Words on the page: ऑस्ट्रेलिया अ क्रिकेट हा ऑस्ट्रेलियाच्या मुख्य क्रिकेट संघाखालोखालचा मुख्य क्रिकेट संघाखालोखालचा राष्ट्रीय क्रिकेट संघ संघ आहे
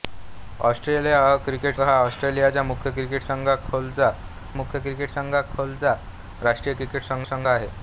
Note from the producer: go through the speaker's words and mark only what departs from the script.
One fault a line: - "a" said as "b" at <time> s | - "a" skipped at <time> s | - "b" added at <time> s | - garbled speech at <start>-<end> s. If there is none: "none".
none